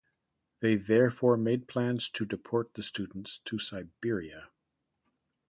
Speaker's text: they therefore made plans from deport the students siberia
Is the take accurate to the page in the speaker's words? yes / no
no